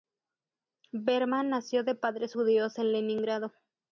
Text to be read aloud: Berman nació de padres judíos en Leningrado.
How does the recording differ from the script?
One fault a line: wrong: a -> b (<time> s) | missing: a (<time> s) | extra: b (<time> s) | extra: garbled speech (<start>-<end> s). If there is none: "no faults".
no faults